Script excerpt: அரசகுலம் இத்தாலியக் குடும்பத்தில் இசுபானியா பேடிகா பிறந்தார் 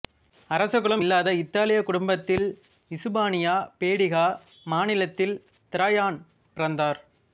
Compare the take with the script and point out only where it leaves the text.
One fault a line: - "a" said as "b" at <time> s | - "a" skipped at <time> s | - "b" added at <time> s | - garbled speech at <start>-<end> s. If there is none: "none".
- "இல்லாத" added at 1.0 s
- "மாநிலத்தில் திராயான்" added at 4.7 s